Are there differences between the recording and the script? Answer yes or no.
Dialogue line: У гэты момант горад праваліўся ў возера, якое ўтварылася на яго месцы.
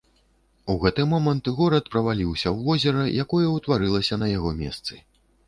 no